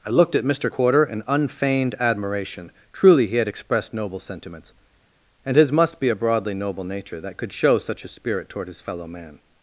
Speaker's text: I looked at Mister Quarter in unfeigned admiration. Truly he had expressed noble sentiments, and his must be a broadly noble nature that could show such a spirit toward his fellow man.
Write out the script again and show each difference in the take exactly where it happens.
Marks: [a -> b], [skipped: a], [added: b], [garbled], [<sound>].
I looked at Mister Quarter in unfeigned admiration. Truly he had expressed noble sentiments, and his must be a broadly noble nature that could show such a spirit toward his fellow man.